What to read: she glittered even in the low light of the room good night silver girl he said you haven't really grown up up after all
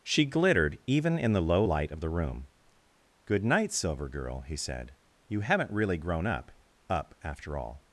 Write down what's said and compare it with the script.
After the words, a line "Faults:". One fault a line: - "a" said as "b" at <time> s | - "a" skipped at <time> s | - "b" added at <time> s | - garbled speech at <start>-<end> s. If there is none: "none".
she glittered even in the low light of the room good night silver girl he said you haven't really grown up up after all
Faults:
none